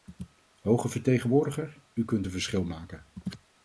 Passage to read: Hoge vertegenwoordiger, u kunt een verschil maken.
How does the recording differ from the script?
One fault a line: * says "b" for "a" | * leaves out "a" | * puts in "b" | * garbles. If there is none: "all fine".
all fine